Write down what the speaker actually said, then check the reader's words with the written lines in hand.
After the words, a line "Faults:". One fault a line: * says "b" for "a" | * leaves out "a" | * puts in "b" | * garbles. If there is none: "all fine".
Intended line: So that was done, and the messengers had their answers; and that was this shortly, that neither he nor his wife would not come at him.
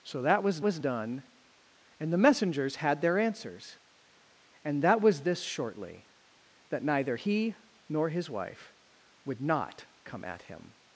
So that was was done, and the messengers had their answers; and that was this shortly, that neither he nor his wife would not come at him.
Faults:
* puts in "was"